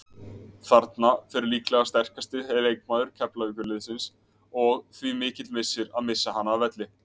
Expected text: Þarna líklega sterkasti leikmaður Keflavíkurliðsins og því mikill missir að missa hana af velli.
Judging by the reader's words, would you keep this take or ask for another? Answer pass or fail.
fail